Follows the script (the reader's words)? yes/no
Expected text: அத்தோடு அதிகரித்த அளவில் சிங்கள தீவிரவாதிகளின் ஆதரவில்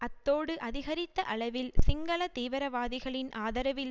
yes